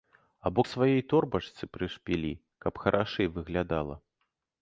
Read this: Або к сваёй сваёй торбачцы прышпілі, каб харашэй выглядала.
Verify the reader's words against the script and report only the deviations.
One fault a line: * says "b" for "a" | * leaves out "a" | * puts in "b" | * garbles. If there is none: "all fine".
* leaves out "сваёй"